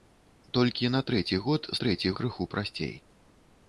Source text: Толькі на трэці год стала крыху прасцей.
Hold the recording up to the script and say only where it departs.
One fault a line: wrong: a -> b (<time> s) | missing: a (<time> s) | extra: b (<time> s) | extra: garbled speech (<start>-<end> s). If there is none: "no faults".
wrong: стала -> трэці (1.8 s)